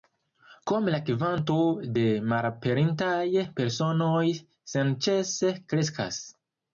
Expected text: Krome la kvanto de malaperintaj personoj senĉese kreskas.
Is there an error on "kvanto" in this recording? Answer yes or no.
no